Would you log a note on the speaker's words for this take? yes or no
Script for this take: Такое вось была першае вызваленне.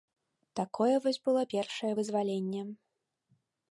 yes